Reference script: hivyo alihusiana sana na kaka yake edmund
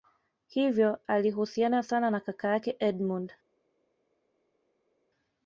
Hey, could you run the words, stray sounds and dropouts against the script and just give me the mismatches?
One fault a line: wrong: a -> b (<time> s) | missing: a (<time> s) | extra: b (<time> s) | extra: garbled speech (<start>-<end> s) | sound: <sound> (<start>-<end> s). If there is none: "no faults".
no faults